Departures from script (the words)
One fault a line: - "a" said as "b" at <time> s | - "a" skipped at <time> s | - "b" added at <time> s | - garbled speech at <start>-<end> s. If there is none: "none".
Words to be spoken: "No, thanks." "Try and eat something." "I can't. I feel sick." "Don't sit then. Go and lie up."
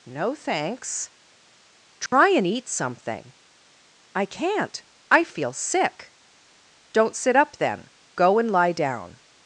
- "up" added at 7.3 s
- "up" said as "down" at 8.7 s